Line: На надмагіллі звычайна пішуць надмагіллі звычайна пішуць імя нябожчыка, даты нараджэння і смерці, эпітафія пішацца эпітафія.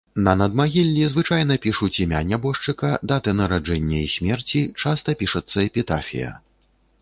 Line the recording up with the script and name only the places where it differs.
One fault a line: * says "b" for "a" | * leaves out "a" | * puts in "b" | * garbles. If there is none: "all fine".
* leaves out "надмагіллі звычайна пішуць"
* says "часта" for "эпітафія"